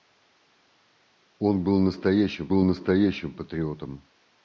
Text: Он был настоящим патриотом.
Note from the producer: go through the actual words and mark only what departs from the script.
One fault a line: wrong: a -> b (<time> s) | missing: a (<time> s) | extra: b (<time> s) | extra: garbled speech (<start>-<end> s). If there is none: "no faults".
extra: был настоящим (2.5 s)